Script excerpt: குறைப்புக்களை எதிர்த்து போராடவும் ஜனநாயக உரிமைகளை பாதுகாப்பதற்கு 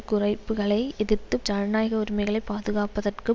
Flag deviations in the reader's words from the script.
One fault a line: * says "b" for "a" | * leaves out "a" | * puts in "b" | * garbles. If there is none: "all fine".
* leaves out "போராடவும்"